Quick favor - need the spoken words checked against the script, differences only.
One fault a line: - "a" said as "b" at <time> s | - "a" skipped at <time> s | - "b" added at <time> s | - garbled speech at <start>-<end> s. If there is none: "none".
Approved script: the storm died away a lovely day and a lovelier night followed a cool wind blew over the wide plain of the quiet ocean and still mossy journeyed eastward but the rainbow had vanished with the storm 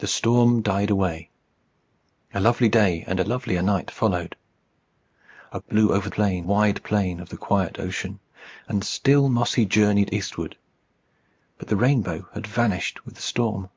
- "cool wind" skipped at 5.6 s
- "the" said as "plain" at 6.1 s